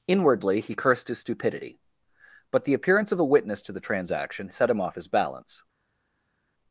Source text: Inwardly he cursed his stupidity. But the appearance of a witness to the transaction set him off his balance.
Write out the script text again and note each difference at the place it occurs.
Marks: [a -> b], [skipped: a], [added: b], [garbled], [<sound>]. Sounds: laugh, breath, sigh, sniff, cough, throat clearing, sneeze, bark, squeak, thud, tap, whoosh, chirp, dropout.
Inwardly he cursed his stupidity. But the appearance of a witness to the transaction set him off his balance.